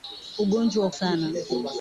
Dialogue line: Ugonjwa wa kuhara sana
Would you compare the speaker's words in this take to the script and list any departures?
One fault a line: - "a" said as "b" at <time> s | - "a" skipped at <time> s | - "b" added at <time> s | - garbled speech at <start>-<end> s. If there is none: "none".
- "kuhara" skipped at 0.9 s